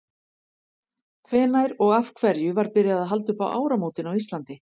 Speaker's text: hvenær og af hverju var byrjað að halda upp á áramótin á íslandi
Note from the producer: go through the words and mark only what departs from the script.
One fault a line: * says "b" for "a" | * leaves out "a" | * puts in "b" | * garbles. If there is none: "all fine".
all fine